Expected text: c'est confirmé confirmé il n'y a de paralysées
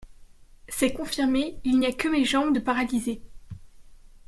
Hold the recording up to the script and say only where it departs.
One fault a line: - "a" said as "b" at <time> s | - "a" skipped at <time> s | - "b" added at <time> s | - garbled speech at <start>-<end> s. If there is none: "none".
- "confirmé" skipped at 1.6 s
- "que mes jambes" added at 1.9 s